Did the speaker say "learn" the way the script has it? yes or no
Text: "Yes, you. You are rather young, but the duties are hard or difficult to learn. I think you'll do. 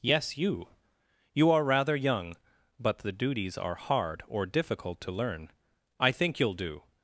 yes